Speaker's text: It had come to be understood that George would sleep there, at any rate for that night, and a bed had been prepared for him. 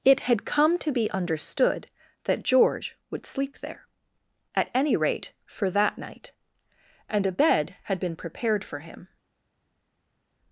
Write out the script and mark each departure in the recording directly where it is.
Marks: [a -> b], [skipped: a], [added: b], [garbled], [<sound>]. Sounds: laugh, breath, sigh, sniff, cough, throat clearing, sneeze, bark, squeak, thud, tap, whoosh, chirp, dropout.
It had come to be understood that George would sleep there, at any rate for that night, and a bed had been prepared for him.